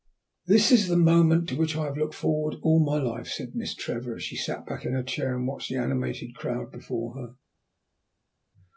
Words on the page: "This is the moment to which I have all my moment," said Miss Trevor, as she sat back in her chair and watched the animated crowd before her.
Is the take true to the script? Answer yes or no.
no